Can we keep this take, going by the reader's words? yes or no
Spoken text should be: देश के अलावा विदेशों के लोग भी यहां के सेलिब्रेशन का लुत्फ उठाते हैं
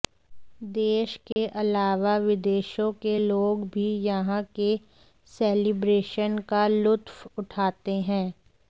yes